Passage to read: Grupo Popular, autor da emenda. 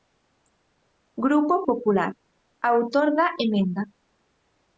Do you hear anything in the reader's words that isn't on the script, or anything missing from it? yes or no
no